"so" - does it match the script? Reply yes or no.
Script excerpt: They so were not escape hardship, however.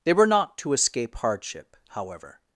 no